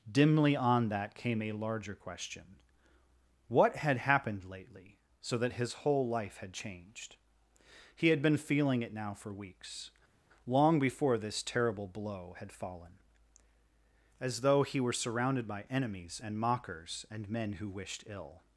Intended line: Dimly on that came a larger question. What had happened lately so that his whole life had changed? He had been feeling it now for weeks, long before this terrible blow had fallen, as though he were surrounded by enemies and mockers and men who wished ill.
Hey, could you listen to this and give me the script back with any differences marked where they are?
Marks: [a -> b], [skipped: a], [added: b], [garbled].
Dimly on that came a larger question. What had happened lately so that his whole life had changed? He had been feeling it now for weeks, long before this terrible blow had fallen, as though he were surrounded by enemies and mockers and men who wished ill.